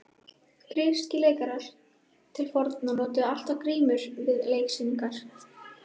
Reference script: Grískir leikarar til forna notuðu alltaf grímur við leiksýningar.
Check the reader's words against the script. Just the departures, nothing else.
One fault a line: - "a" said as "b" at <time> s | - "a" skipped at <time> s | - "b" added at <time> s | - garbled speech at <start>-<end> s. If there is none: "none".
none